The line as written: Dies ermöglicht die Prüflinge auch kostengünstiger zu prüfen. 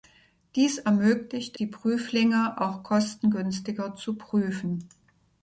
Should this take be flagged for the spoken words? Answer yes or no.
no